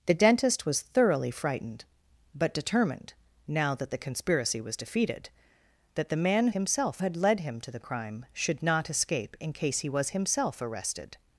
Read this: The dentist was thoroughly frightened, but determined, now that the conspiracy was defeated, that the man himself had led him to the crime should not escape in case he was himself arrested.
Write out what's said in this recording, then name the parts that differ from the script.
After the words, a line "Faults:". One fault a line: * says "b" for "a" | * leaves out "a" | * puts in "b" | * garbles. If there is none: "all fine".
The dentist was thoroughly frightened, but determined, now that the conspiracy was defeated, that the man himself had led him to the crime should not escape in case he was himself arrested.
Faults:
all fine